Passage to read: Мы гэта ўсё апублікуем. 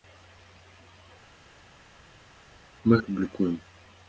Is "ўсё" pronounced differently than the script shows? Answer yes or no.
yes